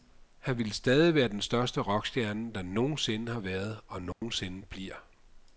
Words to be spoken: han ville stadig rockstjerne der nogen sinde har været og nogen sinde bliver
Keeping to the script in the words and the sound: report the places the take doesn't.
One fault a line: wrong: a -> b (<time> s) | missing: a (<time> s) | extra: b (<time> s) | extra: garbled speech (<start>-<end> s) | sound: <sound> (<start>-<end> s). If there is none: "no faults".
extra: være den største (1.1 s)
sound: dropout (4.1-4.2 s)